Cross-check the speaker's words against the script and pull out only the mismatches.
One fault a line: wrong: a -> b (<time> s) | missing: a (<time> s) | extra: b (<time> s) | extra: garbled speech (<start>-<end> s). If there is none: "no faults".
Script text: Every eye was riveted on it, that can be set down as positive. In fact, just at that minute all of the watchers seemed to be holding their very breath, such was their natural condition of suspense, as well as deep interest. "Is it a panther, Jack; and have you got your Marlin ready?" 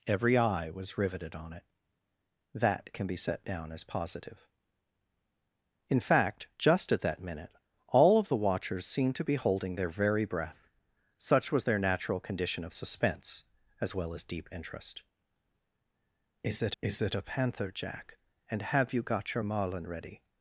extra: is it (16.8 s)